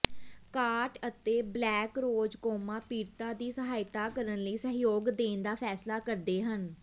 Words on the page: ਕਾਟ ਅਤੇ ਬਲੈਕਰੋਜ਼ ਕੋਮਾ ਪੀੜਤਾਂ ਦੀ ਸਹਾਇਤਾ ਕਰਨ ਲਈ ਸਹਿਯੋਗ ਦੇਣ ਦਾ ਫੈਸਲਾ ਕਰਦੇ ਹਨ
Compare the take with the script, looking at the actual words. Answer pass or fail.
pass